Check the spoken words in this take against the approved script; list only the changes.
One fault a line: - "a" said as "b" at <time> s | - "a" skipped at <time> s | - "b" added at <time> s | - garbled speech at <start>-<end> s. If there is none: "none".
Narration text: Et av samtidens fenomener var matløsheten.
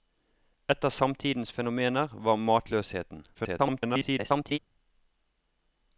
- garbled speech at 3.3-4.6 s